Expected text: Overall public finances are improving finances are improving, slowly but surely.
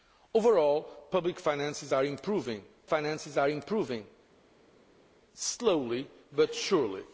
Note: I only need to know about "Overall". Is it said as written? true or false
true